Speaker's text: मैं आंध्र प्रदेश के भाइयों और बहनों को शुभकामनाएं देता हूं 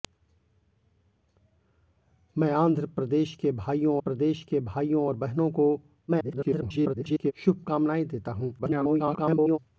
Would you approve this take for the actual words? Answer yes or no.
no